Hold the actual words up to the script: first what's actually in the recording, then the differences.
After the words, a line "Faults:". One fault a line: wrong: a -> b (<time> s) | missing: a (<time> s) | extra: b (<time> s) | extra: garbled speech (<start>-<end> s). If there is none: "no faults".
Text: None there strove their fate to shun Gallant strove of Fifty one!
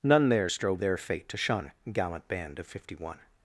None there strove their fate to shun Gallant band of Fifty one!
Faults:
wrong: strove -> band (2.3 s)